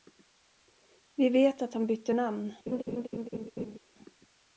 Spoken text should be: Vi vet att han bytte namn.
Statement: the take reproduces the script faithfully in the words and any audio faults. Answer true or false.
false